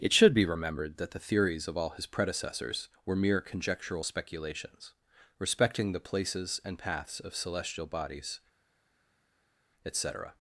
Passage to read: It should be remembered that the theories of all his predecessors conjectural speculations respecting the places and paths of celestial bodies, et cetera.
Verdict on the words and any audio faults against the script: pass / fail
fail